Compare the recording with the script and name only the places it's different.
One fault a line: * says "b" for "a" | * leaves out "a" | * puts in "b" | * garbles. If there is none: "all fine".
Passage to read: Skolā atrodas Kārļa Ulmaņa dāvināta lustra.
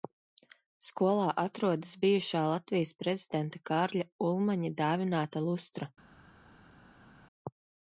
* puts in "bijušā Latvijas prezidenta"